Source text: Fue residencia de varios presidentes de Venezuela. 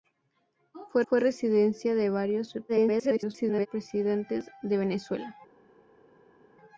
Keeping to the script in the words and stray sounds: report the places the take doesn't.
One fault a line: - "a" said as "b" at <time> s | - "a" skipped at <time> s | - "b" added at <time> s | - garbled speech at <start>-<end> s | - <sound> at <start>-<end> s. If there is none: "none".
- "fue" added at 1.1 s
- garbled speech at 2.7-3.7 s